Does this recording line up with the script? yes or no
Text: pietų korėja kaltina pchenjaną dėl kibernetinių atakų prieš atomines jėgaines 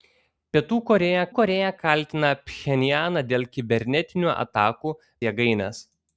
no